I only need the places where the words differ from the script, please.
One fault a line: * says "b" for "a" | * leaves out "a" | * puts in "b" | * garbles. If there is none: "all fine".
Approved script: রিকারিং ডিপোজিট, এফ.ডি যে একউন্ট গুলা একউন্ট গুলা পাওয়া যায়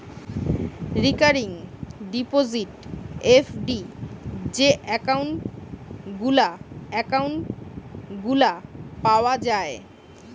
all fine